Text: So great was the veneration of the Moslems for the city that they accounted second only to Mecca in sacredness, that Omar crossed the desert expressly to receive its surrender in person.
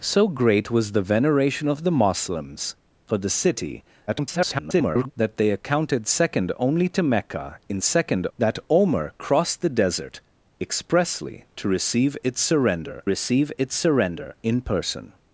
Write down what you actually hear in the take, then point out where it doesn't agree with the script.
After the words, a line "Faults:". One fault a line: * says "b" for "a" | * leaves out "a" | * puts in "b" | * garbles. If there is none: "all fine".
So great was the veneration of the Moslems for the city [garbled] that they accounted second only to Mecca in second, that Omar crossed the desert expressly to receive its surrender receive its surrender in person.
Faults:
* garbles
* says "second" for "sacredness"
* puts in "receive its surrender"